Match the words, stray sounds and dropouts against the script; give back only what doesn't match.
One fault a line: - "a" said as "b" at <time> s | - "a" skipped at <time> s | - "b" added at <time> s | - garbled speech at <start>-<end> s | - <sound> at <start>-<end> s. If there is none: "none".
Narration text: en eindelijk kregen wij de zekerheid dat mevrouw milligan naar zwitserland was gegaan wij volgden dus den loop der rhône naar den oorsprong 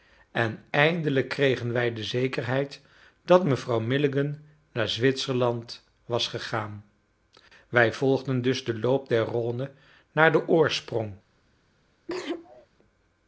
- sneeze at 12.1-12.7 s